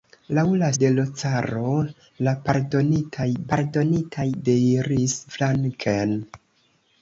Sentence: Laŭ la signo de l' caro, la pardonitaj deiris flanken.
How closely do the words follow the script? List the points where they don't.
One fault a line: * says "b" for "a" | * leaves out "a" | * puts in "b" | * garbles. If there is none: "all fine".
* leaves out "signo"
* puts in "pardonitaj"